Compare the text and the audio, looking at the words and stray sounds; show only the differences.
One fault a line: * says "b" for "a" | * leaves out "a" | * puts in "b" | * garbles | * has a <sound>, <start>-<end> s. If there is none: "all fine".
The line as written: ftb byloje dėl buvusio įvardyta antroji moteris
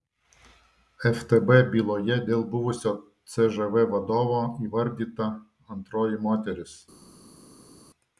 * puts in "cžv vadovo"